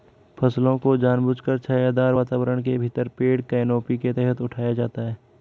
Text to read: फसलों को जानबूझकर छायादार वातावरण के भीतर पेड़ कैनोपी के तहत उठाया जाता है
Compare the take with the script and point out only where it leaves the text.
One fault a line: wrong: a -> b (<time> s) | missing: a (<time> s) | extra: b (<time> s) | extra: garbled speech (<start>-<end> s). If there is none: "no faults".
no faults